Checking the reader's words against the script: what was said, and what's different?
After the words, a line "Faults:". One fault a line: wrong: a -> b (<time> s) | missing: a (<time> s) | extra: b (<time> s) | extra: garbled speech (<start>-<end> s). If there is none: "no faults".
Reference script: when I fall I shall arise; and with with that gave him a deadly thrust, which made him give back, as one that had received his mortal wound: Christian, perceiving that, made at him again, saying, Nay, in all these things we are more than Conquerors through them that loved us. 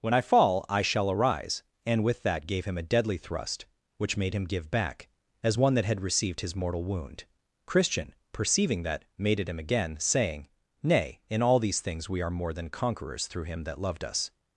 when I fall I shall arise; and with that gave him a deadly thrust, which made him give back, as one that had received his mortal wound: Christian, perceiving that, made at him again, saying, Nay, in all these things we are more than Conquerors through him that loved us.
Faults:
missing: with (2.2 s)
wrong: them -> him (13.5 s)